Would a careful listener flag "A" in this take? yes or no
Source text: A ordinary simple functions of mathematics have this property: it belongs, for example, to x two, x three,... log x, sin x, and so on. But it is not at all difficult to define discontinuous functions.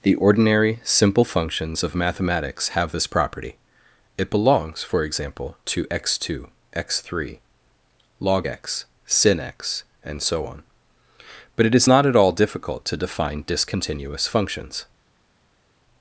yes